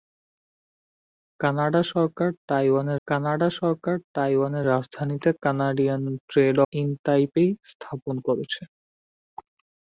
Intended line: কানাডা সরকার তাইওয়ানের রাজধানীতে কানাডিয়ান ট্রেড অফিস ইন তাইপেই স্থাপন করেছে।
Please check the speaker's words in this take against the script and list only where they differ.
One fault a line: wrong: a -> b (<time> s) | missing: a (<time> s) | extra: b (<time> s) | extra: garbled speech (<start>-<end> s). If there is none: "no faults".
extra: কানাডা সরকার তাইওয়ানের (3.1 s)
missing: অফিস (6.6 s)